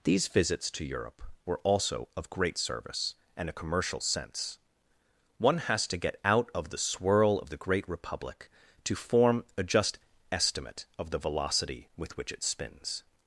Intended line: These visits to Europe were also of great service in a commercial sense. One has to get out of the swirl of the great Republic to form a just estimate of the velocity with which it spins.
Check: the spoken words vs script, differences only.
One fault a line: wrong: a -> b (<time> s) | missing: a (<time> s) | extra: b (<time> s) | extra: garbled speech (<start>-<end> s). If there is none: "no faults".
wrong: in -> and (3.4 s)